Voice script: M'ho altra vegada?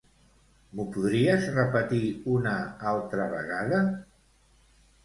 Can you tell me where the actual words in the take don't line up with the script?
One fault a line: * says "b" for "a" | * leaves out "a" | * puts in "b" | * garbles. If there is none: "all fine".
* puts in "podries repetir una"